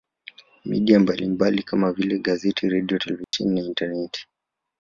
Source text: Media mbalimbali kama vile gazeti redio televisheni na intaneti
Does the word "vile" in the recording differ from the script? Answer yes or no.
no